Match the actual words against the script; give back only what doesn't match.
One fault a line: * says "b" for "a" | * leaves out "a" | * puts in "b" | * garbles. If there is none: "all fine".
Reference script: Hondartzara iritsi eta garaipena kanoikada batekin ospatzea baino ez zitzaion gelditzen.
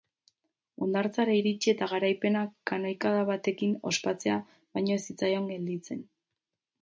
all fine